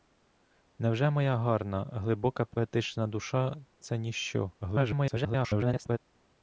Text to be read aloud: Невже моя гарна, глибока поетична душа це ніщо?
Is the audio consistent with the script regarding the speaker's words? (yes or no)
no